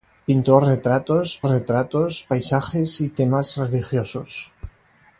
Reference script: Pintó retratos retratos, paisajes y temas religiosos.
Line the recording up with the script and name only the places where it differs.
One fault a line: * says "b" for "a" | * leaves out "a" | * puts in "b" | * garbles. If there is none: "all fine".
all fine